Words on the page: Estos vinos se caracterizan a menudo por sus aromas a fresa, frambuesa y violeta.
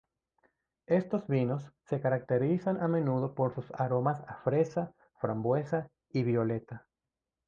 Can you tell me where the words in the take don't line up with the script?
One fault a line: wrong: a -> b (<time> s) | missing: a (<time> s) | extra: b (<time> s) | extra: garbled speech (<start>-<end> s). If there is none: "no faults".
no faults